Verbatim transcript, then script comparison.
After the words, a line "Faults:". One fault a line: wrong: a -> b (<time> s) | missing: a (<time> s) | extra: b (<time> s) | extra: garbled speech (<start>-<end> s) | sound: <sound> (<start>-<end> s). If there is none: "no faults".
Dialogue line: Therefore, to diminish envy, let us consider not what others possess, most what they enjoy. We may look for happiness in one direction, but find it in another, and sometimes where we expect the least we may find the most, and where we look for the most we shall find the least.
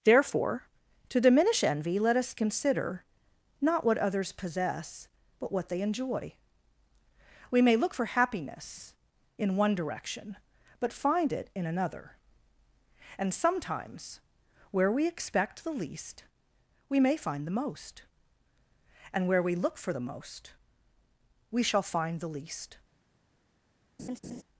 Therefore, to diminish envy, let us consider not what others possess, but what they enjoy. We may look for happiness in one direction, but find it in another, and sometimes where we expect the least we may find the most, and where we look for the most we shall find the least.
Faults:
wrong: most -> but (5.4 s)
sound: laugh (24.0-24.4 s)